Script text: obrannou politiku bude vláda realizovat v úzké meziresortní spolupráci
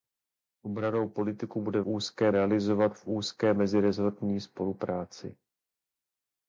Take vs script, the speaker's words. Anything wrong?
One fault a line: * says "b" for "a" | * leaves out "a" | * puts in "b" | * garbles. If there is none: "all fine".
* says "úzké" for "vláda"